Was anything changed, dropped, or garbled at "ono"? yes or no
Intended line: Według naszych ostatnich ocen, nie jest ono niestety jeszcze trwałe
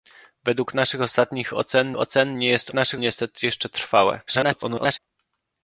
yes